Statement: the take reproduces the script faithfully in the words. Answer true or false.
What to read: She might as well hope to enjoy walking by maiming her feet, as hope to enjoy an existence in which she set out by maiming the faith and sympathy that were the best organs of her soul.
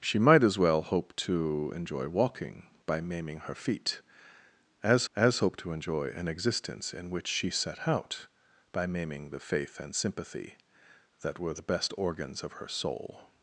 false